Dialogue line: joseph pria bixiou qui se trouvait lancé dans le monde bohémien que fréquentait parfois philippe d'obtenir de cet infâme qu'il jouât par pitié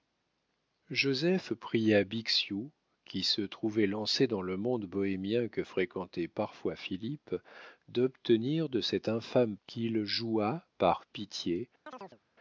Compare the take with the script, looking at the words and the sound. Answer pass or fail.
fail